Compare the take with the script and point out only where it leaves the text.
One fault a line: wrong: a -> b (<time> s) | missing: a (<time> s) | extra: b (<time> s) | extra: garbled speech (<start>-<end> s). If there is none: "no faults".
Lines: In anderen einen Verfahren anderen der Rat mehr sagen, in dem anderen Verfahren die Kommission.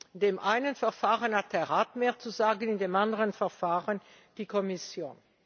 wrong: anderen -> dem (0.2 s)
wrong: anderen -> hat (1.4 s)
extra: zu (2.2 s)